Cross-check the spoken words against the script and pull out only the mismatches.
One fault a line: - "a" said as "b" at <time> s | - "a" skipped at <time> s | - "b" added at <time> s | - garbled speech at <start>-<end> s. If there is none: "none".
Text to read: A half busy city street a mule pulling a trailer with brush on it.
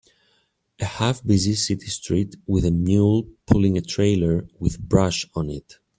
- "with" added at 2.5 s